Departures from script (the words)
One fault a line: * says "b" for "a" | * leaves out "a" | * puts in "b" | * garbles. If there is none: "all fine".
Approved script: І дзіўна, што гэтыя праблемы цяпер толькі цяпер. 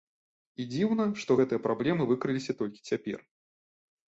* says "выкрыліся" for "цяпер"